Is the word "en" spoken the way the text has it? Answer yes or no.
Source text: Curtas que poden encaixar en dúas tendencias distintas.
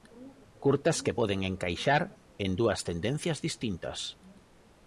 yes